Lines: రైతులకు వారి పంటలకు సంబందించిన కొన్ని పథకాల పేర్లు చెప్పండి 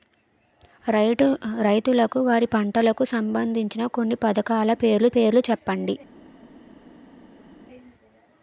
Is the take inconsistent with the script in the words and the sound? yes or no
yes